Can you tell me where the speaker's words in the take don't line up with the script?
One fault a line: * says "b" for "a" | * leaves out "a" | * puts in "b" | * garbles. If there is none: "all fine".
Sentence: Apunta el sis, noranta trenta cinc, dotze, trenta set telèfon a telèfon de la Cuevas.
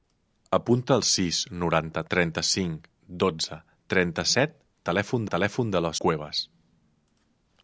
all fine